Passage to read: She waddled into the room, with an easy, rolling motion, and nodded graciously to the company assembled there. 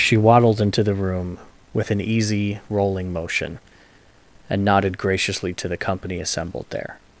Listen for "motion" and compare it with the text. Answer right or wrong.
right